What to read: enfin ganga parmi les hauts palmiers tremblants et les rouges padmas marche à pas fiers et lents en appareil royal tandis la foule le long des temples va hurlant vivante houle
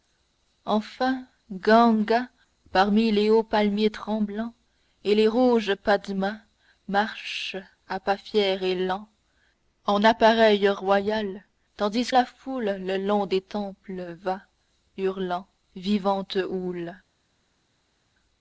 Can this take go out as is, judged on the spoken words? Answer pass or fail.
pass